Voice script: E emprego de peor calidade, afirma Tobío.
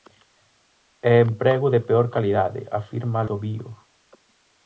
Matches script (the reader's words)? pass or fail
pass